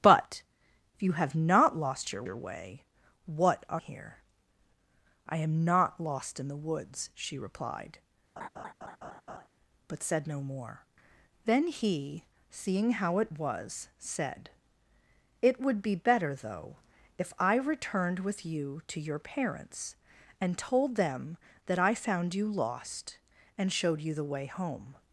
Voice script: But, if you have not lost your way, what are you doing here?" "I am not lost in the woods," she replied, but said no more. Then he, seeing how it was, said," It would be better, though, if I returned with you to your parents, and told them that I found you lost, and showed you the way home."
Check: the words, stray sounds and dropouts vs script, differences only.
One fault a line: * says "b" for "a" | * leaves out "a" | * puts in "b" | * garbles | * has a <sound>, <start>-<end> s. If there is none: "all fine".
* puts in "your"
* leaves out "you doing"
* has a laugh, 8.4-9.5 s